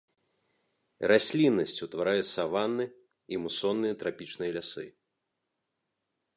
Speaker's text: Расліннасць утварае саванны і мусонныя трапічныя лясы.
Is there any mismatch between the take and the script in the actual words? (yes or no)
no